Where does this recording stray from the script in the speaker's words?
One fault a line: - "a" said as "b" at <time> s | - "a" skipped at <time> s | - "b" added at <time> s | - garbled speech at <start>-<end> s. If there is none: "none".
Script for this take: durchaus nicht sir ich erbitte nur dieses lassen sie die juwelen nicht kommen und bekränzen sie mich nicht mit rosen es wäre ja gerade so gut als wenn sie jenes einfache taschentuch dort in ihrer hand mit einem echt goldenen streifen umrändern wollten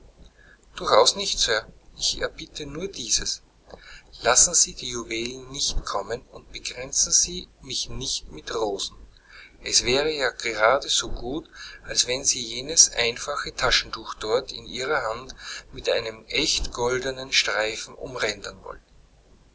none